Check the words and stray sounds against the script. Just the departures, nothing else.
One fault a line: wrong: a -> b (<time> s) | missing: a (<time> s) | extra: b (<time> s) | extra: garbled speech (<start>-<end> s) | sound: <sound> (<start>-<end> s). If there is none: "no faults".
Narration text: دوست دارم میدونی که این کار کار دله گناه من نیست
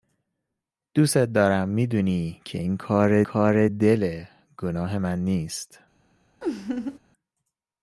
sound: laugh (6.4-7.0 s)